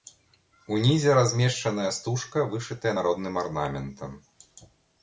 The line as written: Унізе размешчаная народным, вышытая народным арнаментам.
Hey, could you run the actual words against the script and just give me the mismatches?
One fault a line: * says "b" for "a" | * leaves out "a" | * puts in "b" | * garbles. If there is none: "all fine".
* says "стужка" for "народным"